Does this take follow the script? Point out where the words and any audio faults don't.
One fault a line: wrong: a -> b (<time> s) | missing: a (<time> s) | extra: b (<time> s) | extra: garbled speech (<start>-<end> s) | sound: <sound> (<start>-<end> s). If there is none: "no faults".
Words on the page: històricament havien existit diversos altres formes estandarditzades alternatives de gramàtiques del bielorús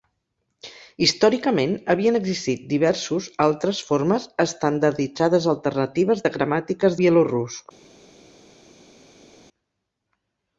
missing: del (7.0 s)